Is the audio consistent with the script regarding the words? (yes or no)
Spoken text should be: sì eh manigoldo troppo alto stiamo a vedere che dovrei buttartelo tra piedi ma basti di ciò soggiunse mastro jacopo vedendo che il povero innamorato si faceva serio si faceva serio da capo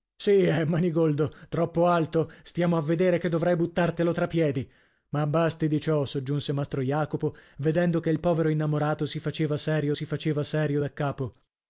yes